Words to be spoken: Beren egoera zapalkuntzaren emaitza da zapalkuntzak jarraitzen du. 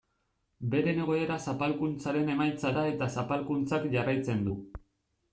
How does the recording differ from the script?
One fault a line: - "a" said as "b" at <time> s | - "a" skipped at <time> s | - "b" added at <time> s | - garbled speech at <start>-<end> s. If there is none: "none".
- "eta" added at 2.9 s